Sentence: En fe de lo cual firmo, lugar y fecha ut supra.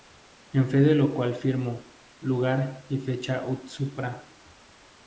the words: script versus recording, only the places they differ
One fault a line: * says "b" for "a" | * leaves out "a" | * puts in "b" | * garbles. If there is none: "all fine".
all fine